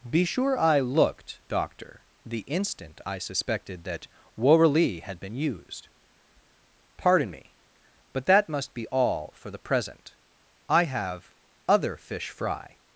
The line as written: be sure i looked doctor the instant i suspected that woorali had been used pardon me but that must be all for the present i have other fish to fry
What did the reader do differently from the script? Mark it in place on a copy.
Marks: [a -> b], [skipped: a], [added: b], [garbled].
be sure i looked doctor the instant i suspected that woorali had been used pardon me but that must be all for the present i have other fish [skipped: to] fry